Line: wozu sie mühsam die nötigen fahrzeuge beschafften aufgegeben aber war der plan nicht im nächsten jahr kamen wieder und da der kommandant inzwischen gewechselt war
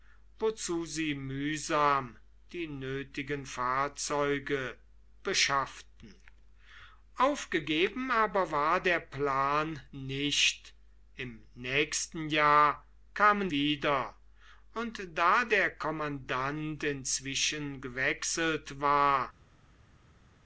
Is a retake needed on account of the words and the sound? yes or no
no